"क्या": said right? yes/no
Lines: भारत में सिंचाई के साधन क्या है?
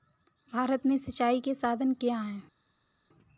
yes